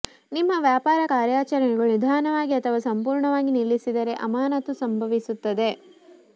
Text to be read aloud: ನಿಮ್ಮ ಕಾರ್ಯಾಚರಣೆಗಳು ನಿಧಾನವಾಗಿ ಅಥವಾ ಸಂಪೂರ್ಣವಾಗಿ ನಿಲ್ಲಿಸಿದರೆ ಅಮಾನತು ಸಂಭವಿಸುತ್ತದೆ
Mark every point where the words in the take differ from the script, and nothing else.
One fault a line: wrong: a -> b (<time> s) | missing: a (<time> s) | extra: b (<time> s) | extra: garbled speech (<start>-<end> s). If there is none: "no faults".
extra: ವ್ಯಾಪಾರ (0.6 s)